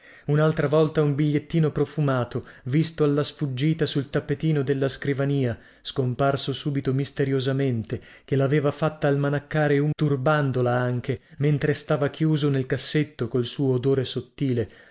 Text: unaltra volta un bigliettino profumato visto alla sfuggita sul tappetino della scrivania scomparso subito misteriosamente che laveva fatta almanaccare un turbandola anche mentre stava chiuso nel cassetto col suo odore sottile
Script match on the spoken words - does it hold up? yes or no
yes